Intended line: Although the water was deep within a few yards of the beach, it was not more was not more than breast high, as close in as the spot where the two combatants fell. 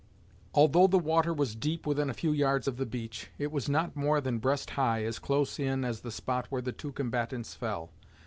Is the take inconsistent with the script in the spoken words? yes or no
yes